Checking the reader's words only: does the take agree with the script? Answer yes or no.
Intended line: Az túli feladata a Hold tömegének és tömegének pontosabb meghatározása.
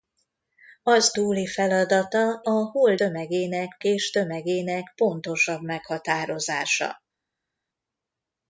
yes